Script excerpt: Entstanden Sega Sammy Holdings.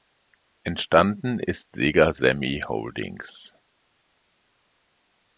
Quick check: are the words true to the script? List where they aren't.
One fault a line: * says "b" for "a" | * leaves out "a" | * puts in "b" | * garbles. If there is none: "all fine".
* puts in "ist"